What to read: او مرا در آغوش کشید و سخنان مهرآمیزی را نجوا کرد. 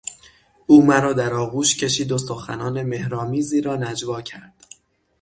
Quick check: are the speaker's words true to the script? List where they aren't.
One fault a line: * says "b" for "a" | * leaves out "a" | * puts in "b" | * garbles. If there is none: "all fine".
all fine